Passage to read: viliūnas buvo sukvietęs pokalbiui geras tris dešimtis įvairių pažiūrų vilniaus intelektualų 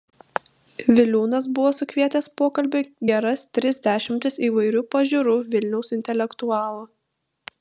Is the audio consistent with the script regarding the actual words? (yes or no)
yes